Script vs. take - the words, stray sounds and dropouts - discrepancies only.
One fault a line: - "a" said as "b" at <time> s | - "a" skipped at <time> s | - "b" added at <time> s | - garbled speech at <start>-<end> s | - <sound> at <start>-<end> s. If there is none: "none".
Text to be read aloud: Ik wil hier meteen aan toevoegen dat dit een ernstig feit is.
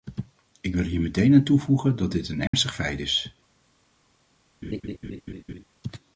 - dropout at 2.5-2.5 s
- laugh at 4.6-5.6 s